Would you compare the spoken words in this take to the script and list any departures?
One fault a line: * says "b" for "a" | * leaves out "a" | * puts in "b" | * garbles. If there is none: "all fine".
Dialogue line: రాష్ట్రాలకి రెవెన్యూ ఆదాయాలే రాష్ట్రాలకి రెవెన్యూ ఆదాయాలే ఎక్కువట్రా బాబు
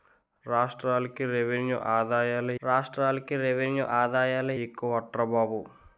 all fine